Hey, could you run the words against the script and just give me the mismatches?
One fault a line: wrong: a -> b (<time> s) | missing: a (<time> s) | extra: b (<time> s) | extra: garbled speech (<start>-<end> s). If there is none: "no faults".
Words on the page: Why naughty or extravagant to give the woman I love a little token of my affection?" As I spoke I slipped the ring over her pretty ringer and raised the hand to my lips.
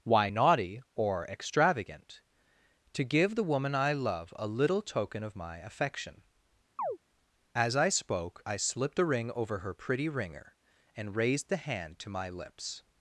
wrong: the -> a (9.0 s)